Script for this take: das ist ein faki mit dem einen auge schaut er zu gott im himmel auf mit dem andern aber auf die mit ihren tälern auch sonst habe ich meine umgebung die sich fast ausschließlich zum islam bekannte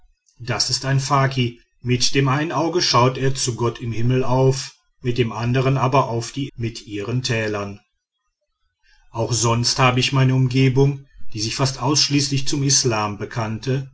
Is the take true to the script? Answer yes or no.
yes